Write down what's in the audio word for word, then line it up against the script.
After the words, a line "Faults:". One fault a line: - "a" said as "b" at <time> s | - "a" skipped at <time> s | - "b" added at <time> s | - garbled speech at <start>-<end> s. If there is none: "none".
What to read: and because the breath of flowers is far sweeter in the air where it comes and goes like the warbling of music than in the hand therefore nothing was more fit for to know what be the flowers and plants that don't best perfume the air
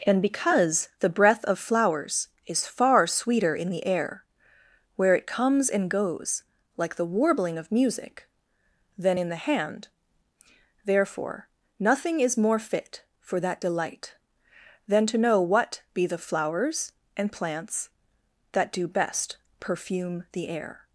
and because the breath of flowers is far sweeter in the air where it comes and goes like the warbling of music than in the hand therefore nothing is more fit for that delight than to know what be the flowers and plants that do best perfume the air
Faults:
- "was" said as "is" at 12.2 s
- "that delight than" added at 13.4 s
- "don't" said as "do" at 18.7 s